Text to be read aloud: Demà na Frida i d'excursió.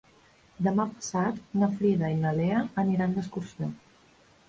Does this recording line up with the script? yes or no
no